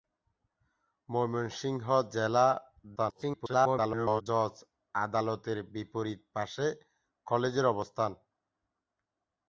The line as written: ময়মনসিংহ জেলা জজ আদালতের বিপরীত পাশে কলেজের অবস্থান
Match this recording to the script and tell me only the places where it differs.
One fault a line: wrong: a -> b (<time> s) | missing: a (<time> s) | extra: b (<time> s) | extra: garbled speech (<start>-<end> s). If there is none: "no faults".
extra: garbled speech (3.0-4.2 s)